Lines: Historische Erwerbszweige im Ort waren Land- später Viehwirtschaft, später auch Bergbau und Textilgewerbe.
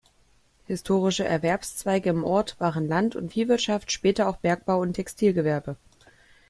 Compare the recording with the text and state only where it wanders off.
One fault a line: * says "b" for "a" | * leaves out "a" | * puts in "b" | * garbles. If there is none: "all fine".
* says "und" for "später"